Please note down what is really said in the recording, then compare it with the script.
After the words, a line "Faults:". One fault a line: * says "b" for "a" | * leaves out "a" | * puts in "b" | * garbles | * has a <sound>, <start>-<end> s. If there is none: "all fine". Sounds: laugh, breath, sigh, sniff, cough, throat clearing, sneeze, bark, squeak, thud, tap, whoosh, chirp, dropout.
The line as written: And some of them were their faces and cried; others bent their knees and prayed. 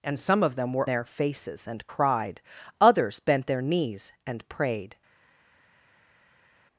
And some of them were their faces and cried; others bent their knees and prayed.
Faults:
all fine